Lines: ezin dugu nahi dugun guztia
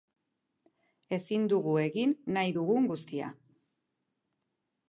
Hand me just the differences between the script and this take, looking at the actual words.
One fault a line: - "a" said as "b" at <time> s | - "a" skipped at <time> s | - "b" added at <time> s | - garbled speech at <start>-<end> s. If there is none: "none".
- "egin" added at 1.8 s